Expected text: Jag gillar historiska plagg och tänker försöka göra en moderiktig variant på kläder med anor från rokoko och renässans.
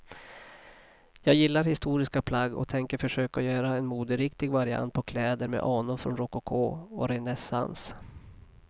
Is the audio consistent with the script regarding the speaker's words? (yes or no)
yes